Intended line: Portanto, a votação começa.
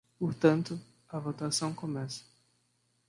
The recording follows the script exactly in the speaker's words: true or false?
true